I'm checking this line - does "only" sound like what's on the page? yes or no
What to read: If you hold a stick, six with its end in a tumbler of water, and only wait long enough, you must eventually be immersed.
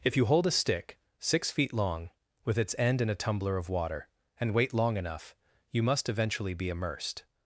no